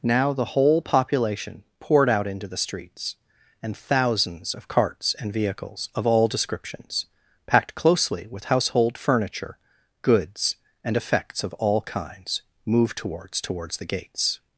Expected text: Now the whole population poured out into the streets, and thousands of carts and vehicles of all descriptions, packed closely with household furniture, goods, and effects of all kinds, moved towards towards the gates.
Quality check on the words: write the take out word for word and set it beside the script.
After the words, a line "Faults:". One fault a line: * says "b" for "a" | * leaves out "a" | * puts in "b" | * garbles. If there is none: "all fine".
Now the whole population poured out into the streets, and thousands of carts and vehicles of all descriptions, packed closely with household furniture, goods, and effects of all kinds, moved towards towards the gates.
Faults:
all fine